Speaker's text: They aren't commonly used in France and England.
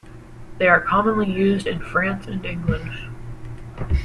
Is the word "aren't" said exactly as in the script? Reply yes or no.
no